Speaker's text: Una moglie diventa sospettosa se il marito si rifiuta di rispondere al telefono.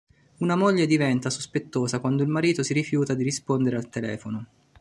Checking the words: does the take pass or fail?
fail